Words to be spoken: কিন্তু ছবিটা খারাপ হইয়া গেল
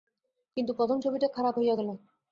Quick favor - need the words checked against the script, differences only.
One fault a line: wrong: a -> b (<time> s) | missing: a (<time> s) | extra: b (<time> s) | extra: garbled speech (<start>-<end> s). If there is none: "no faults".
extra: প্রথম (0.7 s)